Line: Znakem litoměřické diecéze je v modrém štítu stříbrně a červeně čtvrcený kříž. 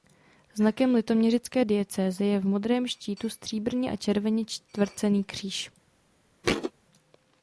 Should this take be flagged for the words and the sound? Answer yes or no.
yes